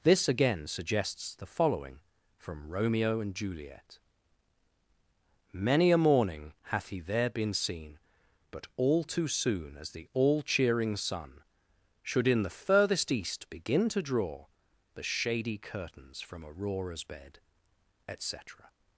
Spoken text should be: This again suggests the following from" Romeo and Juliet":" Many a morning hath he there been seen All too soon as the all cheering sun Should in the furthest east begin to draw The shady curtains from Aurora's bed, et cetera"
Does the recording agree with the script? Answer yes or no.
no